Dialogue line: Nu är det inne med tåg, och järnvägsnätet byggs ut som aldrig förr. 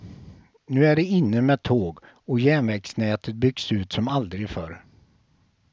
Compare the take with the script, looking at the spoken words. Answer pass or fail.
pass